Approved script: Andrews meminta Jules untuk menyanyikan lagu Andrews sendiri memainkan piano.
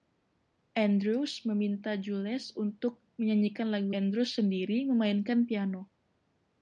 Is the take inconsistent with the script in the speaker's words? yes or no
no